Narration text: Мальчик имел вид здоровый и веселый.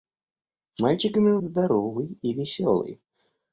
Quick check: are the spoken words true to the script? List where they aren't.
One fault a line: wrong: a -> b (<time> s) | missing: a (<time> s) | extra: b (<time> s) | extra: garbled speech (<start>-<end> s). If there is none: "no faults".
missing: вид (1.4 s)